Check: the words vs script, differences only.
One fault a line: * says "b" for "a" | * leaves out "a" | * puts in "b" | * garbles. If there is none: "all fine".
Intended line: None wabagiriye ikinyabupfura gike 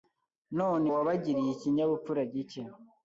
all fine